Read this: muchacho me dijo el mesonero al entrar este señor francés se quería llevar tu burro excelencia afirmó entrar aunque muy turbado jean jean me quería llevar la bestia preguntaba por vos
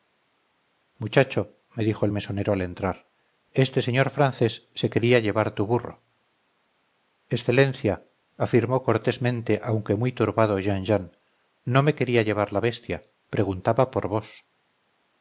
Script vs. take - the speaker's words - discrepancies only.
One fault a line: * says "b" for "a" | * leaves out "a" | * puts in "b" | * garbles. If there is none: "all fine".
* says "cortésmente" for "entrar"
* puts in "no"